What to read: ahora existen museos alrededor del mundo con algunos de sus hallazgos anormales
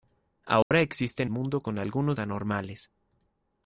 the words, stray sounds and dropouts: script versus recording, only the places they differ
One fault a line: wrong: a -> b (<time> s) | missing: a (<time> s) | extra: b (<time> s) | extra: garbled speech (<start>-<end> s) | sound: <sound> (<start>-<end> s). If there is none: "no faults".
sound: dropout (0.6-0.7 s)
missing: museos alrededor del (1.3 s)
missing: de sus hallazgos (2.2 s)